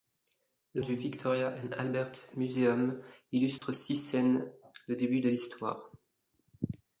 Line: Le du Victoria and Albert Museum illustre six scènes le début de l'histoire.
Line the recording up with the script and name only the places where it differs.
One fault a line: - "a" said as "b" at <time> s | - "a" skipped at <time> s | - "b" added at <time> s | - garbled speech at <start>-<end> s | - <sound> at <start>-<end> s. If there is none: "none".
- dropout at 3.6-3.6 s